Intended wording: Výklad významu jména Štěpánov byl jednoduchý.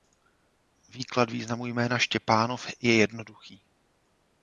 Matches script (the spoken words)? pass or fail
fail